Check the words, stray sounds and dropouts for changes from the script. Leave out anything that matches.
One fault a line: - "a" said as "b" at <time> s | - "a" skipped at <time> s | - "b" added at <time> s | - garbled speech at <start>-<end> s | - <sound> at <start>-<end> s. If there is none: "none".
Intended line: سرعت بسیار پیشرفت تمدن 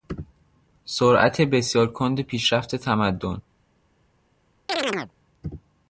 - "کند" added at 1.9 s
- chirp at 4.7-5.1 s